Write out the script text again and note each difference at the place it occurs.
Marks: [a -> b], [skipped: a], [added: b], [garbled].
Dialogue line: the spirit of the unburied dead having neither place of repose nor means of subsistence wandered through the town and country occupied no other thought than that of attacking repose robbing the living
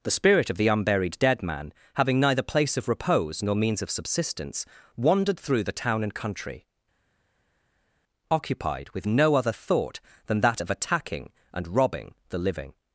the spirit of the unburied dead [added: man] having neither place of repose nor means of subsistence wandered through the town and country occupied [added: with] no other thought than that of attacking [repose -> and] robbing the living